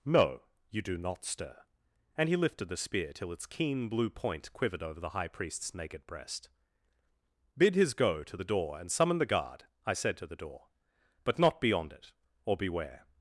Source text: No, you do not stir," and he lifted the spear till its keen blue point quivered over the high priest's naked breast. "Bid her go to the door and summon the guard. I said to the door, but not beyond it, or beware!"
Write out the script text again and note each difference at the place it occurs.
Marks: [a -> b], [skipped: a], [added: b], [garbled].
No, you do not stir," and he lifted the spear till its keen blue point quivered over the high priest's naked breast. "Bid [her -> his] go to the door and summon the guard. I said to the door, but not beyond it, or beware!"